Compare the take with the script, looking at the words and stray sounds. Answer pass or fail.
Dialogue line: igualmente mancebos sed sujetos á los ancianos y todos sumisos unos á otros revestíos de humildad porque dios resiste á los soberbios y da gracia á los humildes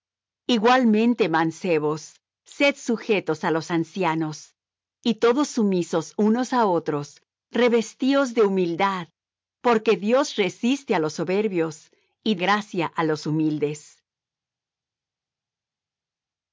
fail